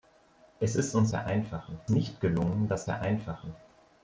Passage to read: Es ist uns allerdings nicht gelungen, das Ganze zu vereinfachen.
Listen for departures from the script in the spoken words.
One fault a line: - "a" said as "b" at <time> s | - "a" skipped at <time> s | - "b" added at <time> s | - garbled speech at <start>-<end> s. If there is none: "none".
- "allerdings" said as "vereinfachen" at 1.1 s
- "Ganze zu" skipped at 2.8 s